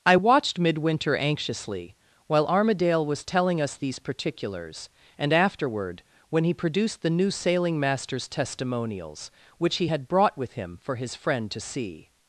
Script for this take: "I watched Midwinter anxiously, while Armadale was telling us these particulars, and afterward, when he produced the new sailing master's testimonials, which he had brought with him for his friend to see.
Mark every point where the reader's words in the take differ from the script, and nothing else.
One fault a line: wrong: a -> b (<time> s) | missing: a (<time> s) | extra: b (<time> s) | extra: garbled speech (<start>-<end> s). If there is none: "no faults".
no faults